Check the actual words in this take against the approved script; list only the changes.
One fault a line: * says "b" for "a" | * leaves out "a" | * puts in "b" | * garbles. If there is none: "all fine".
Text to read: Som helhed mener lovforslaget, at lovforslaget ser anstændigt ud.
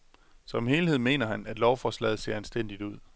* says "han" for "lovforslaget"